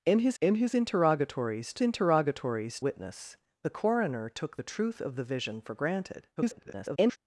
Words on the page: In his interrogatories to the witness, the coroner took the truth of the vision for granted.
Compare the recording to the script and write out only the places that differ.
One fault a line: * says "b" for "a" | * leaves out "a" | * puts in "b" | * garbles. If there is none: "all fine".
* puts in "in his"
* says "interrogatories" for "the"
* garbles